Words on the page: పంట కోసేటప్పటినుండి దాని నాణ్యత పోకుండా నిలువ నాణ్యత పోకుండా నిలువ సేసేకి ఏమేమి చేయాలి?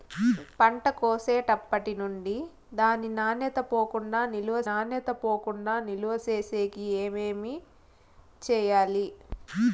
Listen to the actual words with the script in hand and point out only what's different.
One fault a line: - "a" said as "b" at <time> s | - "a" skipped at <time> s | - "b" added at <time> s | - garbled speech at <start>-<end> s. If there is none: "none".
none